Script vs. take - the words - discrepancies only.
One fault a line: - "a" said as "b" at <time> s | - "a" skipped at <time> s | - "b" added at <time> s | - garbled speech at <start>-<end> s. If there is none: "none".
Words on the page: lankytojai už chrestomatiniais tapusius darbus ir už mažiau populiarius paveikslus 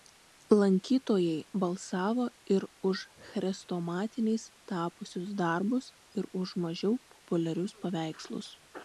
- "balsavo ir" added at 1.6 s